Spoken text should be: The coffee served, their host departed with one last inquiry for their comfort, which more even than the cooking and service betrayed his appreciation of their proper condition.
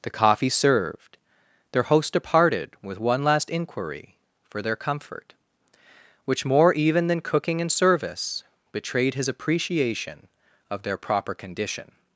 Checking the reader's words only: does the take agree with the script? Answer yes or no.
no